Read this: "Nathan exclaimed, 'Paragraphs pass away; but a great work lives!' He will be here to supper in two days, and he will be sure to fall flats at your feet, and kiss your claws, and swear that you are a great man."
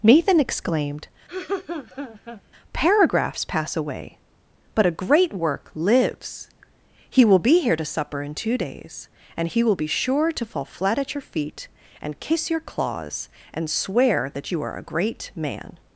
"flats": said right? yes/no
no